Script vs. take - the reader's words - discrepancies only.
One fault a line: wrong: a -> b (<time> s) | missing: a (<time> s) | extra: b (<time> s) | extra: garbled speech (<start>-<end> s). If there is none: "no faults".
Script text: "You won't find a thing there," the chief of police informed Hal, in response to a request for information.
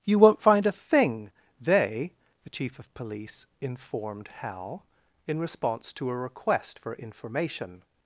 wrong: there -> they (1.6 s)